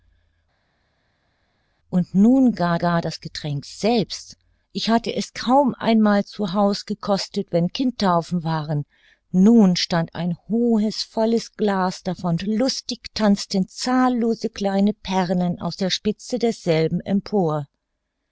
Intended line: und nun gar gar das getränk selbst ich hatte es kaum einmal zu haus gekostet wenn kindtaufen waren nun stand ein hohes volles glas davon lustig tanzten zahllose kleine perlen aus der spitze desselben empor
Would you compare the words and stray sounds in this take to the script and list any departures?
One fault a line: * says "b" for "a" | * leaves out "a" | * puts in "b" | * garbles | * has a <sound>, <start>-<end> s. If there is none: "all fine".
all fine